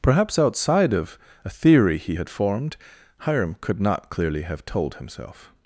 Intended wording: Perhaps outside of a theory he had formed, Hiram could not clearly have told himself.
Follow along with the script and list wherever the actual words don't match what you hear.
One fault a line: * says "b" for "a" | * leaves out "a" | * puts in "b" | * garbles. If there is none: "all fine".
all fine